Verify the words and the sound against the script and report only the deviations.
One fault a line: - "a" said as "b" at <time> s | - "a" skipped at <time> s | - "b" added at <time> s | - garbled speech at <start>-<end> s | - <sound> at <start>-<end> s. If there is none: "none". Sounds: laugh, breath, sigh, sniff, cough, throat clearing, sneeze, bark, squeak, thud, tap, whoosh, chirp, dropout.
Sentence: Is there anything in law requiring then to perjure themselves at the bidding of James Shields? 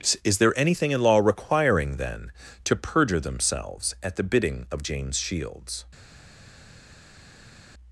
none